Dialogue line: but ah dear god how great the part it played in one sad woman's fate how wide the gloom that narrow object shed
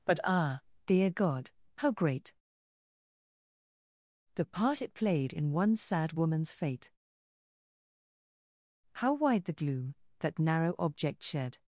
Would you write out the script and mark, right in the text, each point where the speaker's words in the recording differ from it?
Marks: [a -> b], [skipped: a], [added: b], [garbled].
but ah dear god how great the part it played in one sad woman's fate how wide the gloom that narrow object shed